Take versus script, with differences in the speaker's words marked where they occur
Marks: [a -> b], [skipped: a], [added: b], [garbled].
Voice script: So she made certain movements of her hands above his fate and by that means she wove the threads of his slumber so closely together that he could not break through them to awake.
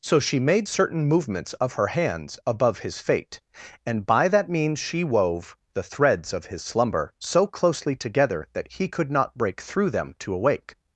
So she made certain movements of her hands above his fate and by that means she wove the threads of his slumber so closely together that he could not break through them to awake.